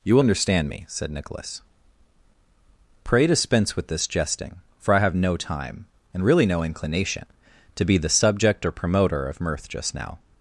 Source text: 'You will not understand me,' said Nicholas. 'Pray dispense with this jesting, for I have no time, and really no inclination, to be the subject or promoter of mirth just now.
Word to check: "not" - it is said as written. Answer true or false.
false